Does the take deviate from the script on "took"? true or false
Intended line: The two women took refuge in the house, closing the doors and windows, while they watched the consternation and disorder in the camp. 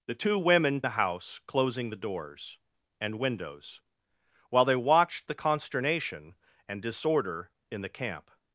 true